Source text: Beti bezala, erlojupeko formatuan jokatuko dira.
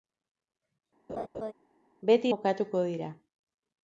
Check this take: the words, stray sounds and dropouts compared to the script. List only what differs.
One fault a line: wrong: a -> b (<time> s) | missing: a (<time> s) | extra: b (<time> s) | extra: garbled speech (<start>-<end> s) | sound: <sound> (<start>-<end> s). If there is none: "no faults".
sound: laugh (1.1-1.5 s)
missing: bezala erlojupeko formatuan (2.3 s)